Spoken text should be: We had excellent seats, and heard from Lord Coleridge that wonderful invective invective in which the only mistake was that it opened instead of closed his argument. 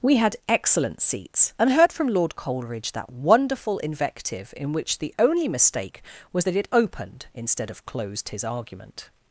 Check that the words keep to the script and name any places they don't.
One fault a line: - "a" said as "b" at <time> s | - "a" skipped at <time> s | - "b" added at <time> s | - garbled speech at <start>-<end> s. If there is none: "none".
- "invective" skipped at 4.5 s